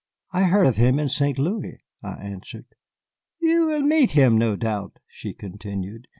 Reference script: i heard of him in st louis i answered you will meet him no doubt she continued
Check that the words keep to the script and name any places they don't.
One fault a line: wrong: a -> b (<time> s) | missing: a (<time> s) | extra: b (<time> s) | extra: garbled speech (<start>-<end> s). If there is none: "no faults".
no faults